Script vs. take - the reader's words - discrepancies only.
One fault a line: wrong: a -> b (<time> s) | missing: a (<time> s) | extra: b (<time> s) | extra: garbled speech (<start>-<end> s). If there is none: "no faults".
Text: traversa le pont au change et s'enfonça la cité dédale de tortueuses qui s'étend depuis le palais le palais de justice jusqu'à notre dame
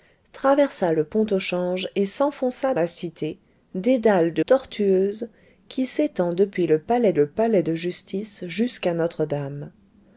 no faults